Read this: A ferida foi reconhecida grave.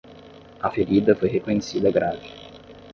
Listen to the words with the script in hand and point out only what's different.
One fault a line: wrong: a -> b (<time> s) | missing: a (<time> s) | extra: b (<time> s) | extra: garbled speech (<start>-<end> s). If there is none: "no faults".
no faults